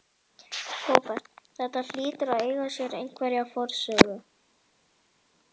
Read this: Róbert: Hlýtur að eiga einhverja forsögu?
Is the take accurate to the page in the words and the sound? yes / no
no